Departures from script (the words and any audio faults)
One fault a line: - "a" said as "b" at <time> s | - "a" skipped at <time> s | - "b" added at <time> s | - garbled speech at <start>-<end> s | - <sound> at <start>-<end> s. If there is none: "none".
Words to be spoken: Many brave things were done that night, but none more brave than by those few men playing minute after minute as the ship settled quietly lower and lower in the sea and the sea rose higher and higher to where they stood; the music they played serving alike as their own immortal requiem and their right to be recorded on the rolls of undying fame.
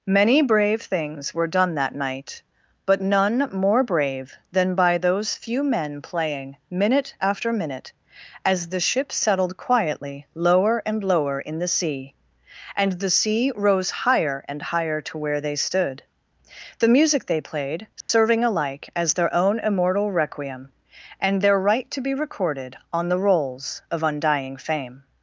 - dropout at 18.0-18.1 s